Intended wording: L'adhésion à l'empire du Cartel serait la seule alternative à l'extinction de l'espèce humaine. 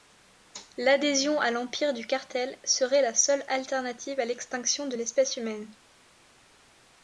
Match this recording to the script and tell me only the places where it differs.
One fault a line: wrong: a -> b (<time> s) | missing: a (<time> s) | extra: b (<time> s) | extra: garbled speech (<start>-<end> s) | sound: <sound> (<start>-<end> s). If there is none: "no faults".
no faults